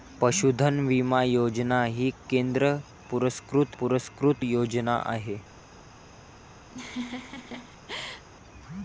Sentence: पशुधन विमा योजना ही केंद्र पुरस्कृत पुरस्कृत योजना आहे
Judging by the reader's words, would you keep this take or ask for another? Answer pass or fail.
pass